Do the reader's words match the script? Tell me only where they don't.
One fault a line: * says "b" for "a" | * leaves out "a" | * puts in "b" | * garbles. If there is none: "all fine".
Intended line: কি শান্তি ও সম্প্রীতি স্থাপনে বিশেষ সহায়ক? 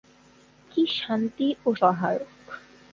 * leaves out "সম্প্রীতি স্থাপনে বিশেষ"